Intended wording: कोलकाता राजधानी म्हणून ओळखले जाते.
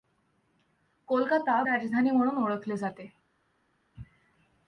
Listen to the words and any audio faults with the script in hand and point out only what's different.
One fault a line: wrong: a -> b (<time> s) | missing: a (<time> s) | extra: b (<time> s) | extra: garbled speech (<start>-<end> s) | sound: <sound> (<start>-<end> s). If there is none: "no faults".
no faults